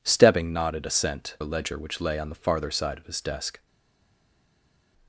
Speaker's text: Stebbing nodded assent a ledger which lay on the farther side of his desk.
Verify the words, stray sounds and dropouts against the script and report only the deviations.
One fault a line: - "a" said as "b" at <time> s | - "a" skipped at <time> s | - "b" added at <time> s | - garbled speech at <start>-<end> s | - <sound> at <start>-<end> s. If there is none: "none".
none